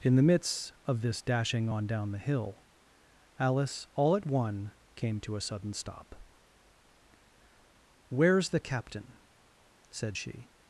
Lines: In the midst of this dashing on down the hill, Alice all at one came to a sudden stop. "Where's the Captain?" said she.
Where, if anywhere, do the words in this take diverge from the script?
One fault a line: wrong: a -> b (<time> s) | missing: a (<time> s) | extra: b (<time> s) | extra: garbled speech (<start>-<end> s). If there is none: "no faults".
no faults